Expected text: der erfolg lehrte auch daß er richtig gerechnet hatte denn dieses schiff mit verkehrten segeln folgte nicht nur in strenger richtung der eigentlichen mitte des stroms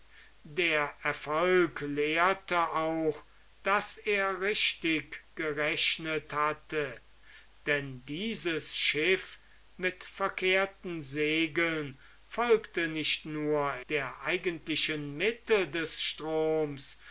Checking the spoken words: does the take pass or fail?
fail